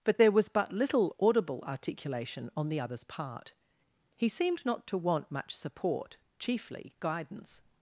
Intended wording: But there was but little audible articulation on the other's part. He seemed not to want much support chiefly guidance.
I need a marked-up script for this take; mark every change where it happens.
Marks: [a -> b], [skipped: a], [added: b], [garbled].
But there was but little audible articulation on the other's part. He seemed not to want much support chiefly guidance.